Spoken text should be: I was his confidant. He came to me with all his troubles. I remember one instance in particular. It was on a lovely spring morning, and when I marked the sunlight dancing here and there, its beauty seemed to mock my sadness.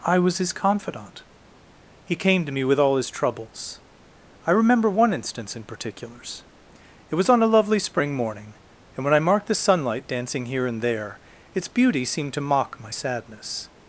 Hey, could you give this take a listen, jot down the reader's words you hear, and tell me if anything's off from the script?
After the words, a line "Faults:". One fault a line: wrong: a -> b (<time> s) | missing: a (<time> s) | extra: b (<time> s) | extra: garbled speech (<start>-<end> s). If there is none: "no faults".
I was his confidant. He came to me with all his troubles. I remember one instance in particulars. It was on a lovely spring morning, and when I marked the sunlight dancing here and there, its beauty seemed to mock my sadness.
Faults:
wrong: particular -> particulars (5.6 s)